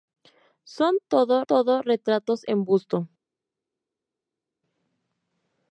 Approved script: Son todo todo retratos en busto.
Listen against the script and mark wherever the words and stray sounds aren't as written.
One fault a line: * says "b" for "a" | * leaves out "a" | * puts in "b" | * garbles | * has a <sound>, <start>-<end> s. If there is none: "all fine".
all fine